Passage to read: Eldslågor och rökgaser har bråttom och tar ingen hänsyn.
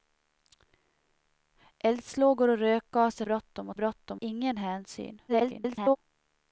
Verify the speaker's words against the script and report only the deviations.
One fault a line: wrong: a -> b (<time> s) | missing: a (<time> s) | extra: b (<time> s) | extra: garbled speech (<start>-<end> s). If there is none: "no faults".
missing: har (3.2 s)
wrong: tar -> bråttom (3.7 s)
extra: garbled speech (5.3-6.0 s)